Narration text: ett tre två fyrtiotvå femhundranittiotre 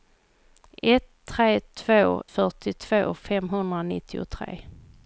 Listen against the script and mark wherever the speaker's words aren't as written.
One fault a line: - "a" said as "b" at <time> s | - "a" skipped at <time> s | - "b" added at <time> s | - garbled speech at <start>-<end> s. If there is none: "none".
none